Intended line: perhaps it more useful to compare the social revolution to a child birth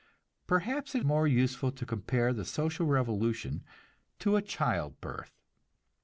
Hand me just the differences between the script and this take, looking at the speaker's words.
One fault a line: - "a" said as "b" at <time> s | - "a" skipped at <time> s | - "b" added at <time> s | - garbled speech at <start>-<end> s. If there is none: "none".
none